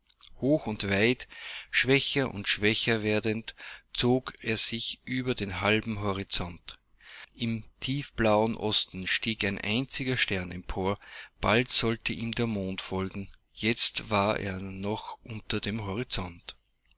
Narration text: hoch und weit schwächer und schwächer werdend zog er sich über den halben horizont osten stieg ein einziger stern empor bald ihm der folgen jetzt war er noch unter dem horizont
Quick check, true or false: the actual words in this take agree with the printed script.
false